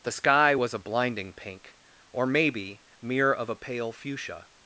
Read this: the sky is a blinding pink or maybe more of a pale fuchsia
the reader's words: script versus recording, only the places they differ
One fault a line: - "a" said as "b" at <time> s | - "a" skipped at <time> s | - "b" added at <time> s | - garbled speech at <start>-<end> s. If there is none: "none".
- "is" said as "was" at 0.5 s
- "more" said as "mere" at 3.0 s